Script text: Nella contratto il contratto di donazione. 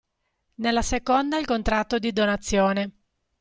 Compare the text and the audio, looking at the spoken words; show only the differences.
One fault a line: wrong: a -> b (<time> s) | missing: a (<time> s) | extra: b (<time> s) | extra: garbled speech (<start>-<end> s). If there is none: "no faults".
wrong: contratto -> seconda (0.8 s)